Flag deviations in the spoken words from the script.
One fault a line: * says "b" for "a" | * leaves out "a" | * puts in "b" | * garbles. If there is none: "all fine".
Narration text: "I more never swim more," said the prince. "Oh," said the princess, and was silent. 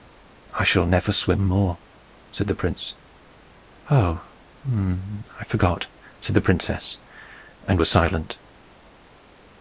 * says "shall" for "more"
* puts in "I forgot"